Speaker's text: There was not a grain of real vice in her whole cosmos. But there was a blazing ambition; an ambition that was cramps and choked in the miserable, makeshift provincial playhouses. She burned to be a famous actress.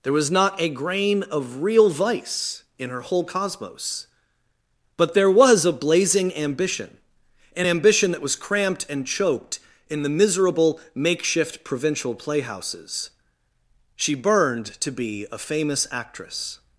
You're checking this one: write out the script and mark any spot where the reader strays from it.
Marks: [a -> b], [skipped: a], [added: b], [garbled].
There was not a grain of real vice in her whole cosmos. But there was a blazing ambition; an ambition that was [cramps -> cramped] and choked in the miserable, makeshift provincial playhouses. She burned to be a famous actress.